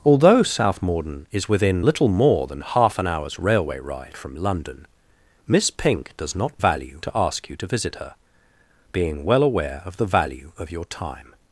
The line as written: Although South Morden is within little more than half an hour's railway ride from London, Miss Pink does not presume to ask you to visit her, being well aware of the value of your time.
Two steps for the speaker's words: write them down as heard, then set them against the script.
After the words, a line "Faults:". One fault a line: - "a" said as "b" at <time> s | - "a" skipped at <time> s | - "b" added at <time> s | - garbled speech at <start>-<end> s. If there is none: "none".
Although South Morden is within little more than half an hour's railway ride from London, Miss Pink does not value to ask you to visit her, being well aware of the value of your time.
Faults:
- "presume" said as "value" at 6.6 s